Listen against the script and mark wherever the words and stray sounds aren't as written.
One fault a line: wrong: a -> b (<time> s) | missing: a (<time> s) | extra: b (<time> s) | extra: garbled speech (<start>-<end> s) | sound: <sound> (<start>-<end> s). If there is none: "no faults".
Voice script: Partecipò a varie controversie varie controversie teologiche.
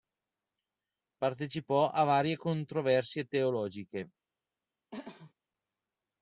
missing: varie controversie (3.2 s)
sound: throat clearing (4.9-5.3 s)